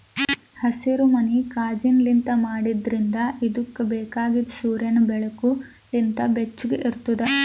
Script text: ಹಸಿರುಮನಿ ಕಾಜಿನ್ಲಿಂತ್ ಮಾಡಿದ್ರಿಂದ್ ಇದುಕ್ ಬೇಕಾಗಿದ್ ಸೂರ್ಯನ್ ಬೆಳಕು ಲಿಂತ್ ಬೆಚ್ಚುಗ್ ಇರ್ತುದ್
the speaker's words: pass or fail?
pass